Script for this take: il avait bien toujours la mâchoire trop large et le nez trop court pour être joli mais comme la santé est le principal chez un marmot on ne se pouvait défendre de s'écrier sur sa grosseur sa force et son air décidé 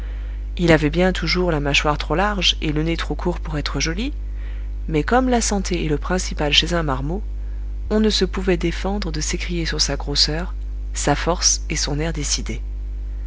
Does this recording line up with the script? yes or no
yes